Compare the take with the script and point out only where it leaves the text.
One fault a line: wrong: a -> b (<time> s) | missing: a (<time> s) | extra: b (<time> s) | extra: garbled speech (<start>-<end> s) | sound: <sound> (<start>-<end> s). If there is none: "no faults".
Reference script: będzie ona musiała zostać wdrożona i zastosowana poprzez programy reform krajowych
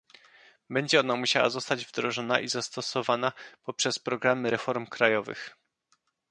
no faults